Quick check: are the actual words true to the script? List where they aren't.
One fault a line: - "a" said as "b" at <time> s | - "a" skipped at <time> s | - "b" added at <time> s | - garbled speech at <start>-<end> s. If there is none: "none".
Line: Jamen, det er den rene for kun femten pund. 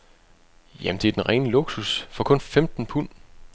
- "luksus" added at 1.5 s